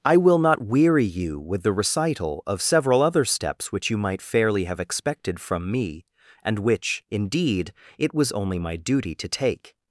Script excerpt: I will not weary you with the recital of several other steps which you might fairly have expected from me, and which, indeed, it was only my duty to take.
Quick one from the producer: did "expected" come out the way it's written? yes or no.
yes